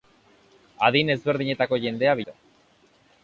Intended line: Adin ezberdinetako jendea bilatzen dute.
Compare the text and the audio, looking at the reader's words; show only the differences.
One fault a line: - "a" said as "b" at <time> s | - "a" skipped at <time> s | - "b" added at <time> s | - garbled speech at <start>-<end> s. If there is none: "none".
- "bilatzen" skipped at 2.2 s